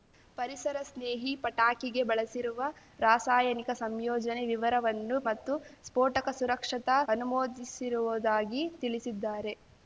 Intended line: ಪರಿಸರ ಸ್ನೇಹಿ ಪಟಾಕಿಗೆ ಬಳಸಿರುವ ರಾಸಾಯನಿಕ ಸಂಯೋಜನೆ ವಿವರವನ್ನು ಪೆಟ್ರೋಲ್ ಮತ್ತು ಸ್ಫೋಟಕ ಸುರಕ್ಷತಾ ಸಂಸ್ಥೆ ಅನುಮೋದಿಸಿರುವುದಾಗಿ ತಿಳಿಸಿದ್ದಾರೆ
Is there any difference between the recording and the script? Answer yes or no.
yes